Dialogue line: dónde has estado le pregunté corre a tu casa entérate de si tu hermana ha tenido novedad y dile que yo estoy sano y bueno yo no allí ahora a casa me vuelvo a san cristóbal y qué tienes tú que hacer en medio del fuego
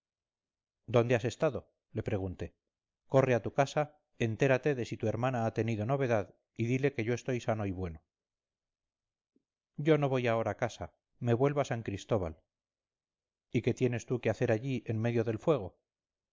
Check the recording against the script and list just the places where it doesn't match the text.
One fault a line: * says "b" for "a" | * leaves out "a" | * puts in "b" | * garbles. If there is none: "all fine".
* says "voy" for "allí"
* puts in "allí"